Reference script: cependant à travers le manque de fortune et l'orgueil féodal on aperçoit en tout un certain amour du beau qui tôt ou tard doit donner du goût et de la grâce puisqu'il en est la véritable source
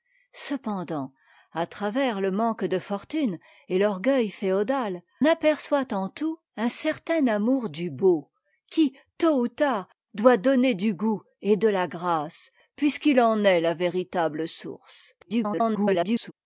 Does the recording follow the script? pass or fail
fail